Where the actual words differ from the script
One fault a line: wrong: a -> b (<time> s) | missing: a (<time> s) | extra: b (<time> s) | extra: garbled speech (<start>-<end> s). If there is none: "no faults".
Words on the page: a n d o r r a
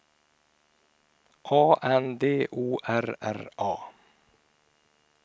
no faults